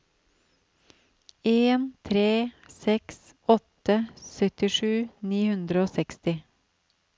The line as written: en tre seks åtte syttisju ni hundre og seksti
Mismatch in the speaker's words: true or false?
false